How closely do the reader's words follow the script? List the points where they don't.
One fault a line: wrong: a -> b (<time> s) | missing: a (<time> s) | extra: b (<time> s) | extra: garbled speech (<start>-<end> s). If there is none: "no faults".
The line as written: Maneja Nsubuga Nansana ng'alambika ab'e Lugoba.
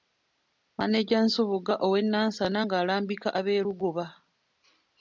extra: ow'e (1.9 s)